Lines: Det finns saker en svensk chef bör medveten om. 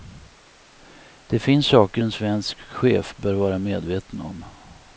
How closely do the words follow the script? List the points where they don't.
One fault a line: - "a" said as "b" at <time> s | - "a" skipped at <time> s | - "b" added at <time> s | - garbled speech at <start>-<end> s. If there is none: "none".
- "vara" added at 3.3 s